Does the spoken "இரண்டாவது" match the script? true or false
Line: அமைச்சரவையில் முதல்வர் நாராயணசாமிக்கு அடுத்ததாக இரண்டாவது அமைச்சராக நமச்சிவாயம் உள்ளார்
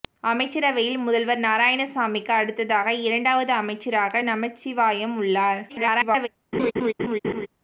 true